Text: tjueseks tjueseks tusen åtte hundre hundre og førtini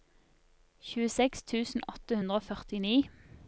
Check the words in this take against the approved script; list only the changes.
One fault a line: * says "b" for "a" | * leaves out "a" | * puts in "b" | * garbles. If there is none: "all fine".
* leaves out "tjueseks"
* leaves out "hundre"